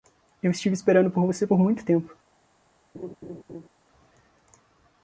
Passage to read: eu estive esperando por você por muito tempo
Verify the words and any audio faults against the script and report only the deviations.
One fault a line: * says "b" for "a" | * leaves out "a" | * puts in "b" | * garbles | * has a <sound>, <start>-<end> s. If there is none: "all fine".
* has a laugh, 2.9-3.7 s